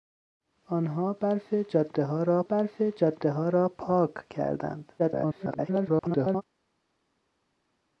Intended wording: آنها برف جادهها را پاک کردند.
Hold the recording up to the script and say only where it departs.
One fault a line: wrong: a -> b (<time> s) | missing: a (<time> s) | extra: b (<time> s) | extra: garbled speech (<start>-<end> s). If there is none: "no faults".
extra: برف جادهها را (2.4 s)
extra: garbled speech (5.0-6.4 s)